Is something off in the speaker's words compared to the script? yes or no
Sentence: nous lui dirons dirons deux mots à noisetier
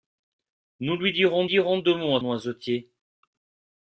no